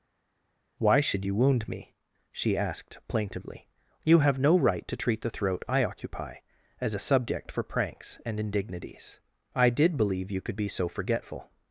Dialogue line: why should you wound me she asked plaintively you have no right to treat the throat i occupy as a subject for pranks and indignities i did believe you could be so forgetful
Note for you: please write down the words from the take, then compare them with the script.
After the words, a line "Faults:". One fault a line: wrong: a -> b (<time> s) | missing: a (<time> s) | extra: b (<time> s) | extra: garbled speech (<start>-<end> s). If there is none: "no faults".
why should you wound me she asked plaintively you have no right to treat the throat i occupy as a subject for pranks and indignities i did believe you could be so forgetful
Faults:
no faults